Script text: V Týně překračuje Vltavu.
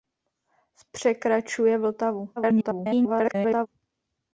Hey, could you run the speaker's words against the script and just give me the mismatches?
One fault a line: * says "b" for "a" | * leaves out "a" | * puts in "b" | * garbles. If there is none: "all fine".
* leaves out "Týně"
* garbles